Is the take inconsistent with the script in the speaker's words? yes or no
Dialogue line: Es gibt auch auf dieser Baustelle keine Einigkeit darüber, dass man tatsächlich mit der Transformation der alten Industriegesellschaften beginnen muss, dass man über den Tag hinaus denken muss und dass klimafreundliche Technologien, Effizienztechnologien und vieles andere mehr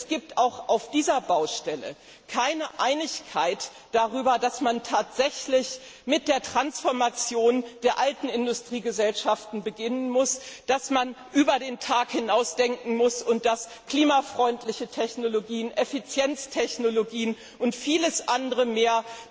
no